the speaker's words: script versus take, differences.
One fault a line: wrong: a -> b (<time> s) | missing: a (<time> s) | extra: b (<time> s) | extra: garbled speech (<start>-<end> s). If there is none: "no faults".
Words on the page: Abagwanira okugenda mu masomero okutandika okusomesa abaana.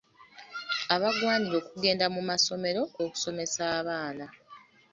missing: okutandika (2.8 s)